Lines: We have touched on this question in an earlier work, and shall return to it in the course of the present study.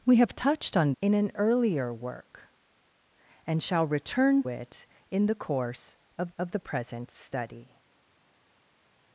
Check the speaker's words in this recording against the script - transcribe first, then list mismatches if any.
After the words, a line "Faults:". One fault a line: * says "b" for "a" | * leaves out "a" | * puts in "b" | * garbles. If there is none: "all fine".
We have touched on in an earlier work, and shall return it in the course of of the present study.
Faults:
* leaves out "this question"
* leaves out "to"
* puts in "of"